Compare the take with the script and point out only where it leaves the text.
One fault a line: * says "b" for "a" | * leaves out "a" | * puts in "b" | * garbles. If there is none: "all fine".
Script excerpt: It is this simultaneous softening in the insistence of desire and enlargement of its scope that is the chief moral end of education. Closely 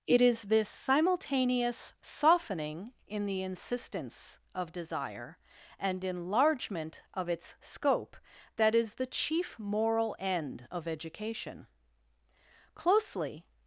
all fine